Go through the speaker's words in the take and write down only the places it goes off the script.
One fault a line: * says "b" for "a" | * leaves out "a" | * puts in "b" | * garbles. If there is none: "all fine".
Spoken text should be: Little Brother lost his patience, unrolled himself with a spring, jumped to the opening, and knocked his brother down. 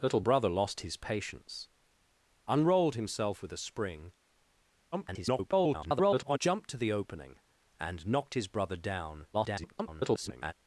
* garbles
* garbles